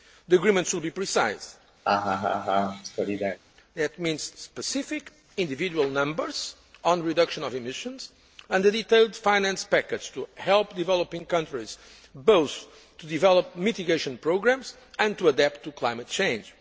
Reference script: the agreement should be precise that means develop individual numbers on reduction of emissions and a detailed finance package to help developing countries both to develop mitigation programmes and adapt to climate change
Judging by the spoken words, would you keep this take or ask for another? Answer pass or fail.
fail